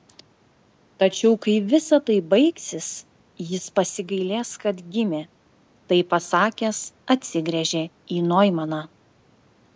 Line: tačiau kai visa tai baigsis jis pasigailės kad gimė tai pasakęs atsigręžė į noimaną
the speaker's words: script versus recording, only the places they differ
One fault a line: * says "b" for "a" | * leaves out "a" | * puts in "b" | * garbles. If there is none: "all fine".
all fine